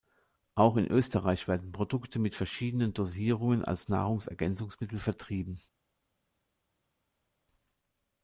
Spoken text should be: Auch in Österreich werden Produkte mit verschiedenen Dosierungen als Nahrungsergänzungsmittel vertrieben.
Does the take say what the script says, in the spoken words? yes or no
yes